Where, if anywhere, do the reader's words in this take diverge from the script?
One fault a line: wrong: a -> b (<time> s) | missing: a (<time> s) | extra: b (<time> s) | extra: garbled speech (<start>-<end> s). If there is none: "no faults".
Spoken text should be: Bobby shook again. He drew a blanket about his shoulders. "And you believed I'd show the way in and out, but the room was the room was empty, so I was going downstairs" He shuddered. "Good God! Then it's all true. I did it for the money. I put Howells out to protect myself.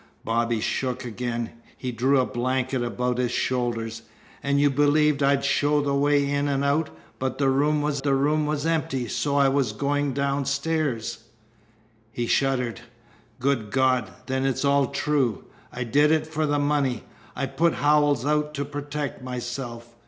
no faults